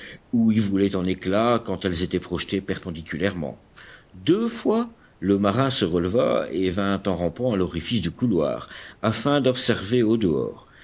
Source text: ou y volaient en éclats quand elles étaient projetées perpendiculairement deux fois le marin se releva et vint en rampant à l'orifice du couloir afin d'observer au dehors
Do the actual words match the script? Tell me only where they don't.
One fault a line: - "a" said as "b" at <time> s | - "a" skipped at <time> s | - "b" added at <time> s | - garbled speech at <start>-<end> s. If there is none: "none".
none